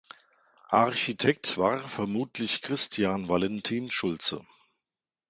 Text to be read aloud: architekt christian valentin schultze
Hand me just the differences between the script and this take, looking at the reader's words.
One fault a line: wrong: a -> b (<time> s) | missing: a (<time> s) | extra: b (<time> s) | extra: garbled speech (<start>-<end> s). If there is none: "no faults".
extra: war vermutlich (1.6 s)